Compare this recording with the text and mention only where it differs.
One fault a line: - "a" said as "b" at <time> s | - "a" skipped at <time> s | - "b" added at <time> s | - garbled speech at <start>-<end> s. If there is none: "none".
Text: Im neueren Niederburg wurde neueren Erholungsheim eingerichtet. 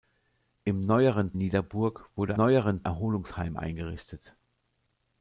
none